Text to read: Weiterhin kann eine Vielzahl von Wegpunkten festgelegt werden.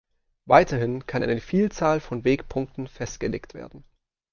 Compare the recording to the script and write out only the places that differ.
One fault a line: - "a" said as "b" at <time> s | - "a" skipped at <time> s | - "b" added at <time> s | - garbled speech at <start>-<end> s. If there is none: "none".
none